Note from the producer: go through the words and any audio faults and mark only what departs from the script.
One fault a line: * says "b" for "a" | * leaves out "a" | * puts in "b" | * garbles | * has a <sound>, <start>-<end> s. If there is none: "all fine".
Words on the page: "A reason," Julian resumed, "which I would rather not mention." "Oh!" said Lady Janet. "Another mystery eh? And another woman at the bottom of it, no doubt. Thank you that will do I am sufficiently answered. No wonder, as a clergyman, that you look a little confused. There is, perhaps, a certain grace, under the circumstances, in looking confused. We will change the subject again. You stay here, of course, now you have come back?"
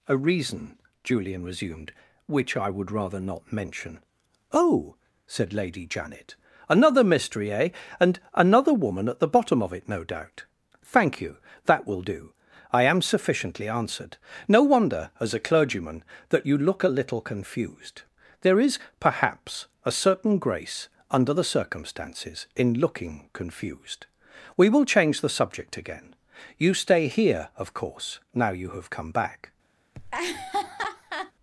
* has a laugh, 29.9-31.3 s